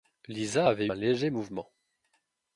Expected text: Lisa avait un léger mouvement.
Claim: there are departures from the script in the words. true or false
false